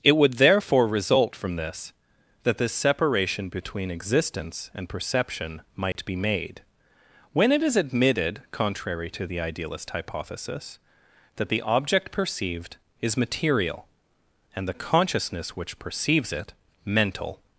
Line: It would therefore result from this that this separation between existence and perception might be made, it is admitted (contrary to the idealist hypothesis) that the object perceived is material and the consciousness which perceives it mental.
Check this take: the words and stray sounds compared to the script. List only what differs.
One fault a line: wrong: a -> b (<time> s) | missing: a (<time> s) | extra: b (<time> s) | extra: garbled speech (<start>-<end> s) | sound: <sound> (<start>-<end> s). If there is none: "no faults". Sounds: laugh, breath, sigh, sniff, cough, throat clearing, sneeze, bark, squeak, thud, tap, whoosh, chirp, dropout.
sound: dropout (5.9-6.0 s)
extra: when (7.3 s)